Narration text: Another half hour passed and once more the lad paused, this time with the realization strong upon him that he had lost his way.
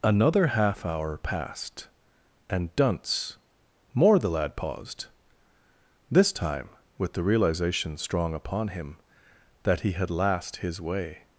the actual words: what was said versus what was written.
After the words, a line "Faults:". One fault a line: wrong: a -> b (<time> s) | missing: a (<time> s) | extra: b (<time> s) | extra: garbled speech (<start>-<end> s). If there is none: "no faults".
Another half hour passed and dunce more the lad paused, this time with the realization strong upon him that he had last his way.
Faults:
wrong: once -> dunce (2.8 s)
wrong: lost -> last (10.1 s)